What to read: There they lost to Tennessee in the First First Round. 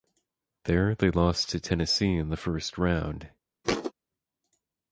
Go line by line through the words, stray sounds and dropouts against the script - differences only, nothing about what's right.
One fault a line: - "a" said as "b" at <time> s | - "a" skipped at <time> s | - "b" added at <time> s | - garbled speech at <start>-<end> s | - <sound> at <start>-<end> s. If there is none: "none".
- "First" skipped at 2.8 s
- thud at 3.6-3.9 s